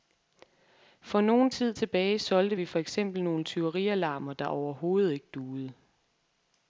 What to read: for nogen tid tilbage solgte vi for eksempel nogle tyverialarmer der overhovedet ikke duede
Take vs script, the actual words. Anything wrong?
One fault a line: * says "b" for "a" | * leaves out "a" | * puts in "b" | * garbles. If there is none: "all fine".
all fine